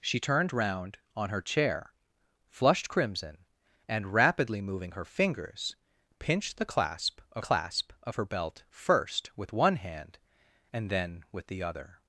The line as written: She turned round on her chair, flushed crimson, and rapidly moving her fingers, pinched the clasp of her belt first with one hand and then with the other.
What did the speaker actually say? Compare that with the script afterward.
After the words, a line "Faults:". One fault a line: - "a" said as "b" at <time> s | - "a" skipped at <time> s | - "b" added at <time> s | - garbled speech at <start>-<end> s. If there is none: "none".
She turned round on her chair, flushed crimson, and rapidly moving her fingers, pinched the clasp of clasp of her belt first with one hand and then with the other.
Faults:
- "clasp of" added at 7.4 s